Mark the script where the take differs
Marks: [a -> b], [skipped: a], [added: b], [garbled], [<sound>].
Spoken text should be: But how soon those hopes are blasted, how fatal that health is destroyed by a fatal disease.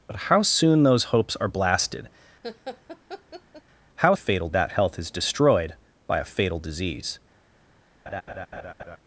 But how soon those hopes are blasted, [laugh] how fatal that health is destroyed by a fatal disease. [laugh]